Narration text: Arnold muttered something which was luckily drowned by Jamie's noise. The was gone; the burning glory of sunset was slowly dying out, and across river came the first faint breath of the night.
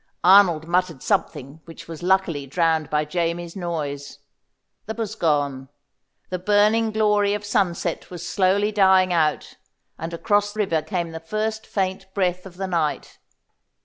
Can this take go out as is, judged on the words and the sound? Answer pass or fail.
pass